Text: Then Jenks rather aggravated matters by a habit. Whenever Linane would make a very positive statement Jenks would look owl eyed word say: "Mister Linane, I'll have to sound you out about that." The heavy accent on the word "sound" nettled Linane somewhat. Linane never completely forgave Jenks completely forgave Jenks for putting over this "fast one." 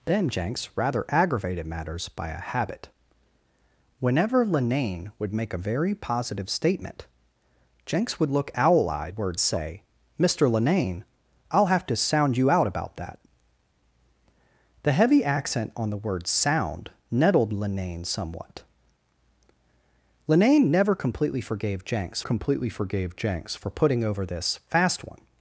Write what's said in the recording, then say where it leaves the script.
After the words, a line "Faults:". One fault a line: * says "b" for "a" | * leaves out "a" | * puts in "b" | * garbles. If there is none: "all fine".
Then Jenks rather aggravated matters by a habit. Whenever Linane would make a very positive statement Jenks would look owl eyed word say: "Mister Linane, I'll have to sound you out about that." The heavy accent on the word "sound" nettled Linane somewhat. Linane never completely forgave Jenks completely forgave Jenks for putting over this "fast one."
Faults:
all fine